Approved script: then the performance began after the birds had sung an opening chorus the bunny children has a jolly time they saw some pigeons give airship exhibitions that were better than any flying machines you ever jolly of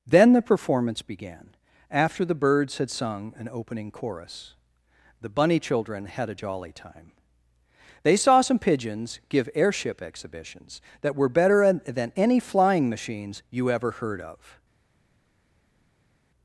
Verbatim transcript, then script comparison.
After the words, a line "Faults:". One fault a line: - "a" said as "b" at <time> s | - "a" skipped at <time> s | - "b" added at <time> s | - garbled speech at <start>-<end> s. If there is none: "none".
then the performance began after the birds had sung an opening chorus the bunny children had a jolly time they saw some pigeons give airship exhibitions that were better than any flying machines you ever heard of
Faults:
- "has" said as "had" at 6.0 s
- "jolly" said as "heard" at 13.9 s